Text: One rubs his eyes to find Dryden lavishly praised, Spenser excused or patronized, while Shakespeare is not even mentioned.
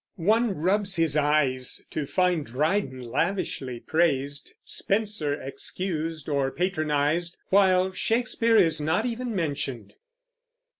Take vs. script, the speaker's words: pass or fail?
pass